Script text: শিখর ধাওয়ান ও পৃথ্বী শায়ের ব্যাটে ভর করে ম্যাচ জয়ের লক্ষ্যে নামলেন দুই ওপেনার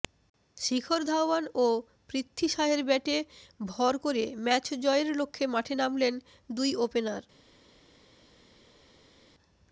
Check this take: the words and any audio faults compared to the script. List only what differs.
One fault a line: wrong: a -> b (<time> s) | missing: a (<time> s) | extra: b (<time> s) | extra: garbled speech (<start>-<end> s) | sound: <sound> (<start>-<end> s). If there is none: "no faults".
extra: মাঠে (5.5 s)